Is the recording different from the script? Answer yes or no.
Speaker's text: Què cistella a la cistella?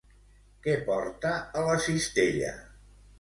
yes